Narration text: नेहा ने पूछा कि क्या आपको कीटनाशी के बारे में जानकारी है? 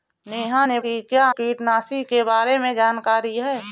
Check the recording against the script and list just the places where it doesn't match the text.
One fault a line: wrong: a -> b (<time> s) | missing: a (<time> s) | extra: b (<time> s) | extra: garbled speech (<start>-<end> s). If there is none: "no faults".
missing: पूछा (0.8 s)
missing: आपको (1.2 s)